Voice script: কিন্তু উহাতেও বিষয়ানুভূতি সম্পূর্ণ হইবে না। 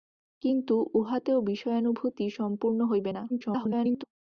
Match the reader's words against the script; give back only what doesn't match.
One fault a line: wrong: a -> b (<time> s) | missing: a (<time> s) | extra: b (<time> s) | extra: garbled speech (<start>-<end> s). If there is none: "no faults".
extra: garbled speech (3.3-4.0 s)